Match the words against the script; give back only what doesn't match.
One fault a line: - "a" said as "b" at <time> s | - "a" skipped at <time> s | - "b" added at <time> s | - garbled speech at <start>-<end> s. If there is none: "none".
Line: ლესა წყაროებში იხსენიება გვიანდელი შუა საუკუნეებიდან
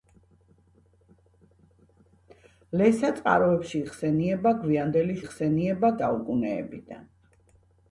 - "შუა" said as "იხსენიება" at 5.2 s